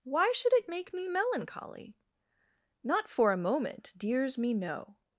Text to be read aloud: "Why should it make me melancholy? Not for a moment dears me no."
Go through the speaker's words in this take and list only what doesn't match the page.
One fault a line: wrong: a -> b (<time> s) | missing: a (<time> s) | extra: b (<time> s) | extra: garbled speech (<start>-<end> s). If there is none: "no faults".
no faults